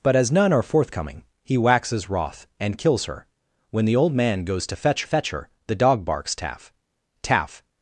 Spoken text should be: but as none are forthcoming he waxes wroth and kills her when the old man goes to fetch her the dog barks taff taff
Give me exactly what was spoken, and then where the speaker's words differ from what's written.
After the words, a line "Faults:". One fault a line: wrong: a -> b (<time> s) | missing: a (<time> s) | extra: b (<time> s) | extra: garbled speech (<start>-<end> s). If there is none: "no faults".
but as none are forthcoming he waxes wroth and kills her when the old man goes to fetch fetch her the dog barks taff taff
Faults:
extra: fetch (5.0 s)